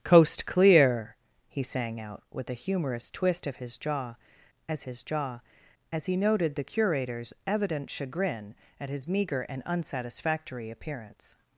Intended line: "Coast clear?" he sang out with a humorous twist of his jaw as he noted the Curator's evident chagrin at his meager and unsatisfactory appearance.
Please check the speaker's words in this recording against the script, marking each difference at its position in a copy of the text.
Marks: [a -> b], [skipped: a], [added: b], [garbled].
"Coast clear?" he sang out with a humorous twist of his jaw as [added: his jaw as] he noted the Curator's evident chagrin at his meager and unsatisfactory appearance.